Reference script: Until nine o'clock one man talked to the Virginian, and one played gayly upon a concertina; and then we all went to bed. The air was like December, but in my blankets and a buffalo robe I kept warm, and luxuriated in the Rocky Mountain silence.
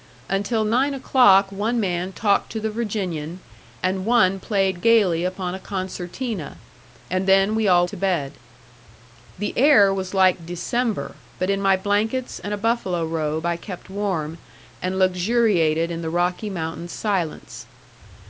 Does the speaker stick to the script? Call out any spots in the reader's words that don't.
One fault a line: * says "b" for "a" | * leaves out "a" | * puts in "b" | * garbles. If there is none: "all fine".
* leaves out "went"